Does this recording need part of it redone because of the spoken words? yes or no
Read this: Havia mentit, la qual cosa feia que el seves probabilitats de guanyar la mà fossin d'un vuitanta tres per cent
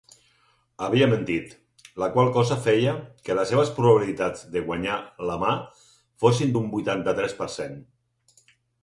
yes